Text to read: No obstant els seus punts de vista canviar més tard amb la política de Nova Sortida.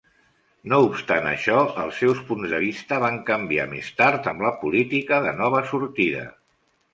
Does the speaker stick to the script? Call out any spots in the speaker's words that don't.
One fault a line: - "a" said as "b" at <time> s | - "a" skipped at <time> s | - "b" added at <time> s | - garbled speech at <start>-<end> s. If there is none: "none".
- "això" added at 1.3 s
- "van" added at 3.1 s